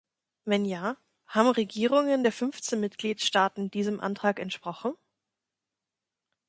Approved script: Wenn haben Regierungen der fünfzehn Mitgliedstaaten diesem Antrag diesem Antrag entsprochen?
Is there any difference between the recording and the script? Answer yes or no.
yes